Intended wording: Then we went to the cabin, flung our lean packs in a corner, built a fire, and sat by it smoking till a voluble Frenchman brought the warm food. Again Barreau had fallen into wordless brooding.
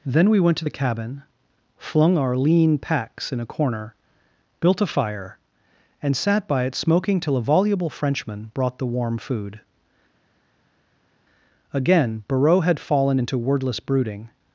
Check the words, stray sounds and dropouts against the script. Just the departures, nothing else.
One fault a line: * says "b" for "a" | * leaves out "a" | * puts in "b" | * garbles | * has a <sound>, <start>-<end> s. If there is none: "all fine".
all fine